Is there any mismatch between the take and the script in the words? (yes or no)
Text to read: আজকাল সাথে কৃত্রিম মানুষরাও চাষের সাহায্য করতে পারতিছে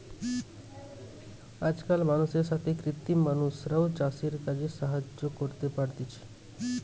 yes